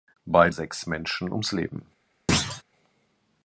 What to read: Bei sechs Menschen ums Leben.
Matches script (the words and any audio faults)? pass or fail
fail